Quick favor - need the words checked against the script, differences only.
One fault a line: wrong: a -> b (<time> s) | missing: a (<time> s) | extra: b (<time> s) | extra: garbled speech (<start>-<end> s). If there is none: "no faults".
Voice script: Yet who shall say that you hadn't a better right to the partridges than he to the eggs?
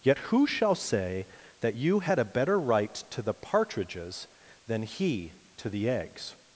wrong: hadn't -> had (2.0 s)